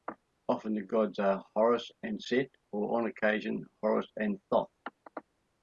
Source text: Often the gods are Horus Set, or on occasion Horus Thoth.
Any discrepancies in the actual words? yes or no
yes